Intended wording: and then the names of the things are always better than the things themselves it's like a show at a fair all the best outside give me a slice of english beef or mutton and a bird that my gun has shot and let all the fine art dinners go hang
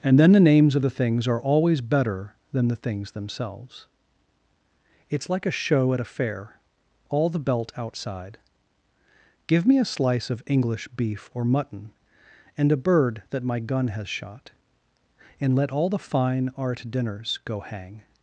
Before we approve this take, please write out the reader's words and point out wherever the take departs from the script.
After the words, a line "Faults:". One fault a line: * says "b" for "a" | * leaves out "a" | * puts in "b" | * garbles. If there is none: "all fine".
and then the names of the things are always better than the things themselves it's like a show at a fair all the belt outside give me a slice of english beef or mutton and a bird that my gun has shot and let all the fine art dinners go hang
Faults:
* says "belt" for "best"